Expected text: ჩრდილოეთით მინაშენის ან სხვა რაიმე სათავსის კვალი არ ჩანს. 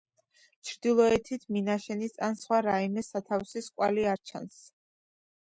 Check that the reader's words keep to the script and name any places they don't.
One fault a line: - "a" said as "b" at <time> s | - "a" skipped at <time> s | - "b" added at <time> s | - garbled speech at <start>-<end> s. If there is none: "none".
none